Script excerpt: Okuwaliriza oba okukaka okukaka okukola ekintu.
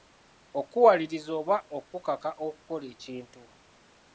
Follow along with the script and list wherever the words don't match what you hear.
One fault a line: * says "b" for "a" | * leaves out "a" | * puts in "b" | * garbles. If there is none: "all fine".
* leaves out "okukaka"